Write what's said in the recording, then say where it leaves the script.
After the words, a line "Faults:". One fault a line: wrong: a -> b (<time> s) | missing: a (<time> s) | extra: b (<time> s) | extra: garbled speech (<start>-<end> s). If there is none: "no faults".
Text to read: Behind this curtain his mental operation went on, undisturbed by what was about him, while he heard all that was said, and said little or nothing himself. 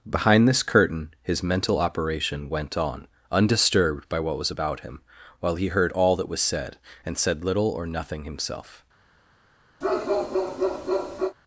Behind this curtain his mental operation went on, undisturbed by what was about him, while he heard all that was said, and said little or nothing himself.
Faults:
no faults